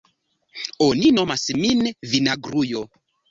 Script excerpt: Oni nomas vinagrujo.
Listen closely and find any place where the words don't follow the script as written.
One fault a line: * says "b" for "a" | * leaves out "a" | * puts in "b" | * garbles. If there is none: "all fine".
* puts in "min"